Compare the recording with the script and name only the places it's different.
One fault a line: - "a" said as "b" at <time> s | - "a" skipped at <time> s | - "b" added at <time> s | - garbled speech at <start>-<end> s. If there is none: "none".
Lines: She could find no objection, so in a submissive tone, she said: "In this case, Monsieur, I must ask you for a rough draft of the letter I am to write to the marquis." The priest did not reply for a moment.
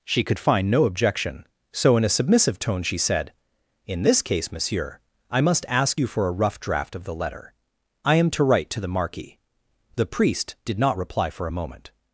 none